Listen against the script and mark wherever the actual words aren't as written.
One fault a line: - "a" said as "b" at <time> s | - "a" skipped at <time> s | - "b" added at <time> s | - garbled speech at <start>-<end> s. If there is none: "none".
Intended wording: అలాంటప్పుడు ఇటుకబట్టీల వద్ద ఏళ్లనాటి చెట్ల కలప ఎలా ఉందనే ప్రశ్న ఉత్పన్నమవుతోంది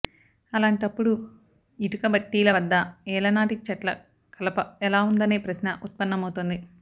none